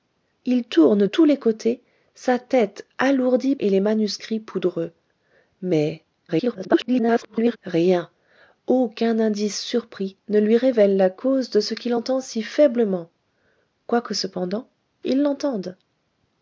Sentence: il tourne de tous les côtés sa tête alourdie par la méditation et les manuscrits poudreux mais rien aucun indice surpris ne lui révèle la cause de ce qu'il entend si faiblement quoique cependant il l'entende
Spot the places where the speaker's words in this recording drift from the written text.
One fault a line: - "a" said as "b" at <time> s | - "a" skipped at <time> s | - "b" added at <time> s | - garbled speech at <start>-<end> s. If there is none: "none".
- "de" skipped at 1.1 s
- "par la méditation" skipped at 3.5 s
- garbled speech at 6.3-7.6 s